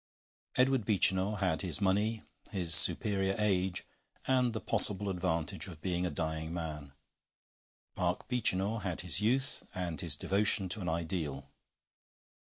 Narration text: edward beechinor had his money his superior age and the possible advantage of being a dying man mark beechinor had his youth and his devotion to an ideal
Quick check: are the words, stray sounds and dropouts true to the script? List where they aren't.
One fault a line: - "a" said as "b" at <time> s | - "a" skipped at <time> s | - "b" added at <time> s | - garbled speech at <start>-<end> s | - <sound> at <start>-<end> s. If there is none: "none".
none